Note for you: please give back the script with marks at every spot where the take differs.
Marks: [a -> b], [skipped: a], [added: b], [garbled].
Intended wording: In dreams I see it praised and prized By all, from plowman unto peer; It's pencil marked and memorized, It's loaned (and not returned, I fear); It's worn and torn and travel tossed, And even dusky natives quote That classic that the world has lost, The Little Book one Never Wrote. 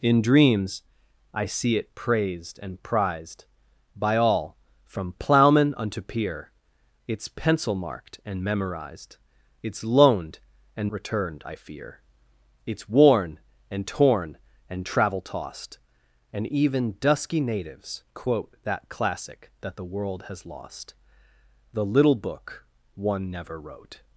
In dreams I see it praised and prized By all, from plowman unto peer; It's pencil marked and memorized, It's loaned (and [skipped: not] returned, I fear); It's worn and torn and travel tossed, And even dusky natives quote That classic that the world has lost, The Little Book one Never Wrote.